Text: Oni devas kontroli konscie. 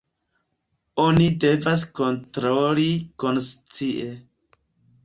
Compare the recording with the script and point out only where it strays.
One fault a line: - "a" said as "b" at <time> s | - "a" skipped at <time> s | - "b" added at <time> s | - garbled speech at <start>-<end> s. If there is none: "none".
none